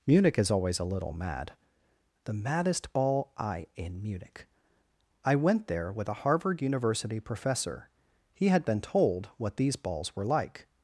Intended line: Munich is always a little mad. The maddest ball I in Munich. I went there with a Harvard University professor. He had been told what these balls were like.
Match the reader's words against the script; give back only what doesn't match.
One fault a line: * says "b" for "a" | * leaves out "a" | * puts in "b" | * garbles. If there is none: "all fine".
all fine